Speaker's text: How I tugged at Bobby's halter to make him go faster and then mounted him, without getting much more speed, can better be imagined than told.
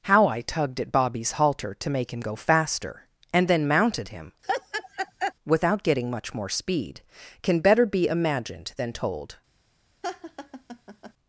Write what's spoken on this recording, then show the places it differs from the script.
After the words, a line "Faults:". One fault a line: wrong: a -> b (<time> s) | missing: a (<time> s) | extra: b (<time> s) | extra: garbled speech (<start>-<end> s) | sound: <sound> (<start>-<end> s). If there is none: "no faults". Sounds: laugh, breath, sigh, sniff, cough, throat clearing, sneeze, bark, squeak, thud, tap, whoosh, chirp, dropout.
How I tugged at Bobby's halter to make him go faster and then mounted him, without getting much more speed, can better be imagined than told.
Faults:
sound: laugh (4.4-5.3 s)
sound: laugh (10.0-11.1 s)